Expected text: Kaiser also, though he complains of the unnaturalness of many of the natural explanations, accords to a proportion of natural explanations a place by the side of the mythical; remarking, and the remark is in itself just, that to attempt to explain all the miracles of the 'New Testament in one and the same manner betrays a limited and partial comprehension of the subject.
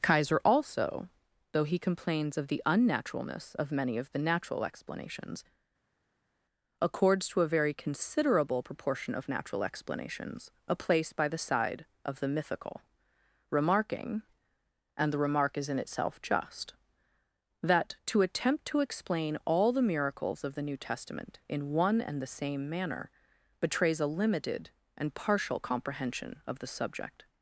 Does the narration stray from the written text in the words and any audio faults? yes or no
yes